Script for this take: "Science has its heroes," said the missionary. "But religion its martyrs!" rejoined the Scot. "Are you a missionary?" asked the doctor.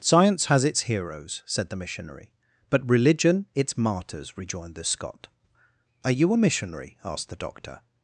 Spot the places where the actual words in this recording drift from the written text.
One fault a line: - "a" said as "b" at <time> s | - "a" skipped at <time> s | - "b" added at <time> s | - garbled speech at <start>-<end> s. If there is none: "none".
none